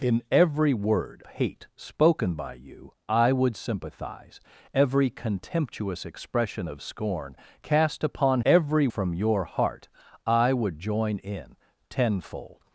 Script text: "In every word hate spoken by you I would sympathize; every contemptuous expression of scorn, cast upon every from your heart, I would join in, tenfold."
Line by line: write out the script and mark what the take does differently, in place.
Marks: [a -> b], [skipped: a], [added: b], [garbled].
"In every word hate spoken by you I would sympathize; every contemptuous expression of scorn, cast upon every from your heart, I would join in, tenfold."